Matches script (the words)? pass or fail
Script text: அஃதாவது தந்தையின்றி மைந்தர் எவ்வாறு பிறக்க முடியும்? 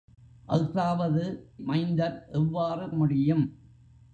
fail